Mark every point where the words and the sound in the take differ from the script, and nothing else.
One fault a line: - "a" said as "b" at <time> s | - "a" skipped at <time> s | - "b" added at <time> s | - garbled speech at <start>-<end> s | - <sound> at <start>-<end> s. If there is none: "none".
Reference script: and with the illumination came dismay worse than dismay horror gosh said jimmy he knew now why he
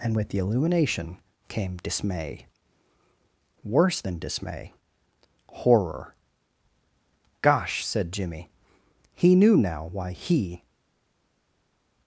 none